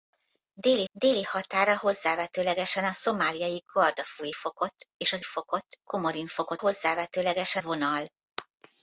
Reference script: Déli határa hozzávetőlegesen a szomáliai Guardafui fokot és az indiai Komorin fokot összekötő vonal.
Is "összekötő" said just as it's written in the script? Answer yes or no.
no